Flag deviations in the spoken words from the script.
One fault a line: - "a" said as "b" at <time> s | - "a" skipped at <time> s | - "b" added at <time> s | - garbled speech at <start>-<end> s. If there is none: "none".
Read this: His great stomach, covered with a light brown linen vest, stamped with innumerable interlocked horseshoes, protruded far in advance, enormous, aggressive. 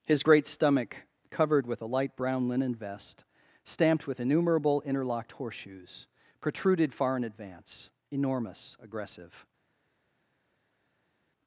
none